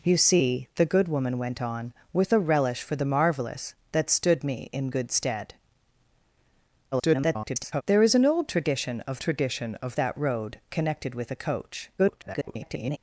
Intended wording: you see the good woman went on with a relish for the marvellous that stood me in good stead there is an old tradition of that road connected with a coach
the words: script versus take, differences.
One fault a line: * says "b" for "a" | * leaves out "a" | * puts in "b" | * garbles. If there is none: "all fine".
* garbles
* puts in "tradition of"
* garbles